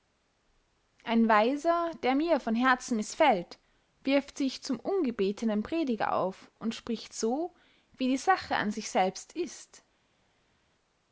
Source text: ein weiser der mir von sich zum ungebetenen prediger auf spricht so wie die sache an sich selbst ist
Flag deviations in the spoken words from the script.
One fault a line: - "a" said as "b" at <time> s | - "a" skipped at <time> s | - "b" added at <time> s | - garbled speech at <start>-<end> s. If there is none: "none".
- "herzen mißfällt wirft" added at 2.5 s
- "und" added at 6.6 s